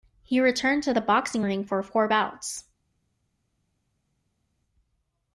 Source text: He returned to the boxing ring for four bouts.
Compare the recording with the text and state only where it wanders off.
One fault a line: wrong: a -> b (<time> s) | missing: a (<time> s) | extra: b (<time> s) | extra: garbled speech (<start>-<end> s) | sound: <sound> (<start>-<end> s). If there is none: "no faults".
no faults